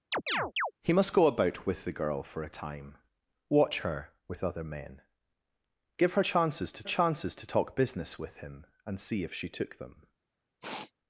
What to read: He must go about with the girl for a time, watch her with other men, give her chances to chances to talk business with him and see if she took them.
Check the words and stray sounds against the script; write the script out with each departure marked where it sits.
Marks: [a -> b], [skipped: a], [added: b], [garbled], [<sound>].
[chirp] He must go about with the girl for a time, watch her with other men, give her chances to chances to talk business with him and see if she took them. [sniff]